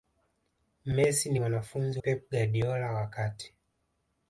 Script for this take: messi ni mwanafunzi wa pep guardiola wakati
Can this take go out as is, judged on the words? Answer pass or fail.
fail